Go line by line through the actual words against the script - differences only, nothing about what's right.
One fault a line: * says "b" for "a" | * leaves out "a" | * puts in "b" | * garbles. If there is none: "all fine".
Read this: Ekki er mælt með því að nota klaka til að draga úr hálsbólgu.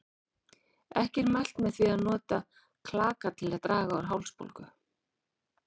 all fine